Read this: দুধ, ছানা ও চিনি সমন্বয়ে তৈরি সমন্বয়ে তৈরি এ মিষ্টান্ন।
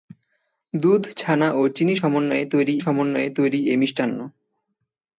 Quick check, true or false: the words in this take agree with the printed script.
true